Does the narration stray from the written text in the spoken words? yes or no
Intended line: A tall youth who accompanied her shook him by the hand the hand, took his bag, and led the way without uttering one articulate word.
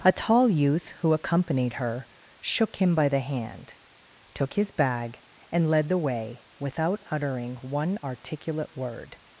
yes